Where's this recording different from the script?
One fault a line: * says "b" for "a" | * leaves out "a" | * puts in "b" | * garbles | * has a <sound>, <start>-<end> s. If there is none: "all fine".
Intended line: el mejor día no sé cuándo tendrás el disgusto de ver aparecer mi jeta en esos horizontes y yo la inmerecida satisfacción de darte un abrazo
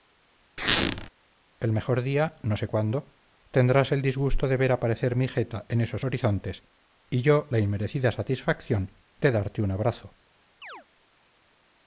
* has a squeak, 0.6-1.1 s
* has a chirp, 10.6-10.9 s